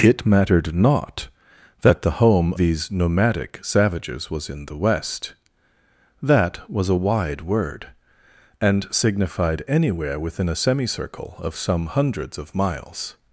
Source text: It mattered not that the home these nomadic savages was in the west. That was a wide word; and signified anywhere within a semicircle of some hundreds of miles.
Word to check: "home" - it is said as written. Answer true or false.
true